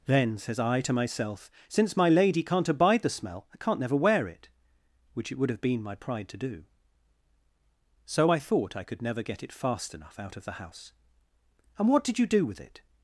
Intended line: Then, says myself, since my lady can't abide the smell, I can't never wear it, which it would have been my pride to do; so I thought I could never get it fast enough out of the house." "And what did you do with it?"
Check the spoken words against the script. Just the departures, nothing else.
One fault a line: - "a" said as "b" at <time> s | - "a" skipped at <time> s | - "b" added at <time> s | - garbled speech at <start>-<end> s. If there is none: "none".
- "I to" added at 0.6 s